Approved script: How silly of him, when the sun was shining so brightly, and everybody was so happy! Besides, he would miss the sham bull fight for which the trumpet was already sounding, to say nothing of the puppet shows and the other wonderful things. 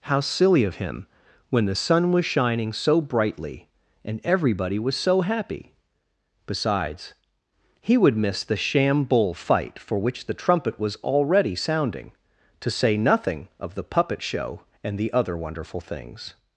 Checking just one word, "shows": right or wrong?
wrong